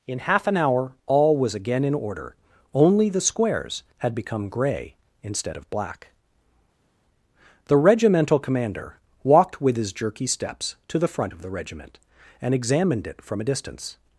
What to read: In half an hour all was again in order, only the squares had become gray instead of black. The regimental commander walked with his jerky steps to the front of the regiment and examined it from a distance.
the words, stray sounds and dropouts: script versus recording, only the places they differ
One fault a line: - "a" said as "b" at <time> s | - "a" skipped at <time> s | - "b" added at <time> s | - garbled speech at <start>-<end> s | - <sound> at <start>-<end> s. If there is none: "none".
none